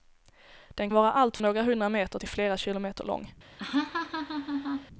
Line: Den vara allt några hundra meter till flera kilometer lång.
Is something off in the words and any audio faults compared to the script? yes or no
yes